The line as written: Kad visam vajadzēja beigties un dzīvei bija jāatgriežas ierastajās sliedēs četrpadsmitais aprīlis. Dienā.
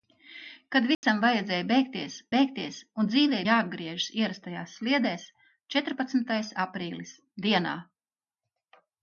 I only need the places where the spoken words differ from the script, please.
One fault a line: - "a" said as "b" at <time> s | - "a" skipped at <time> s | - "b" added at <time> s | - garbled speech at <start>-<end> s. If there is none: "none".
- "beigties" added at 2.3 s
- "bija" skipped at 3.4 s